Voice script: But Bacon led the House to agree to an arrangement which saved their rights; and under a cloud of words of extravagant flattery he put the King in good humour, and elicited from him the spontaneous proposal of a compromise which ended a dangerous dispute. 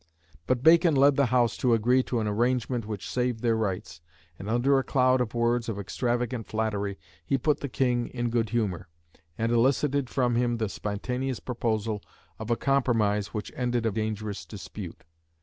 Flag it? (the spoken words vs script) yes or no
no